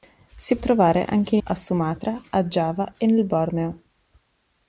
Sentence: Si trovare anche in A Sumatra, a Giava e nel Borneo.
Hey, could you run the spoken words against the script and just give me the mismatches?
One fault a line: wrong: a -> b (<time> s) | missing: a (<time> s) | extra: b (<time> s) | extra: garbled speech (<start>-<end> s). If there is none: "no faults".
no faults